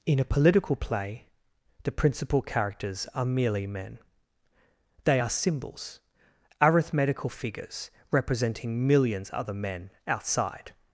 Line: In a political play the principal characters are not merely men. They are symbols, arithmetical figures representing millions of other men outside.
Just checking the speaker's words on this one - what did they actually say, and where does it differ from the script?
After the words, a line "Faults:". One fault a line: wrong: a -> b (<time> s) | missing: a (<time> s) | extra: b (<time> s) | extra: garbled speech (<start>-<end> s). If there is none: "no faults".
In a political play the principal characters are merely men. They are symbols, arithmetical figures representing millions other men outside.
Faults:
missing: not (3.2 s)
missing: of (9.3 s)